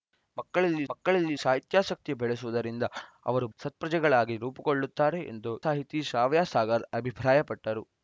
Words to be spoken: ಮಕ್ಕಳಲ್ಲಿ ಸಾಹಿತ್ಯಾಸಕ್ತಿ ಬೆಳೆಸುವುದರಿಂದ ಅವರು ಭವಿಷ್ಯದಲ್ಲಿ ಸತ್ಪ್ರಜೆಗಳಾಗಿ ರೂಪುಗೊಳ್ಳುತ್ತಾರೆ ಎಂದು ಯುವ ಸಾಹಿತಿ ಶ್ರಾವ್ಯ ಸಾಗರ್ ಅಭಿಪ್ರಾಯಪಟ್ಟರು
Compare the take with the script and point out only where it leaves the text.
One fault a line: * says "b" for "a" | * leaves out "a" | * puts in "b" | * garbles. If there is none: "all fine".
* puts in "ಮಕ್ಕಳಲ್ಲಿ"
* leaves out "ಭವಿಷ್ಯದಲ್ಲಿ"
* leaves out "ಯುವ"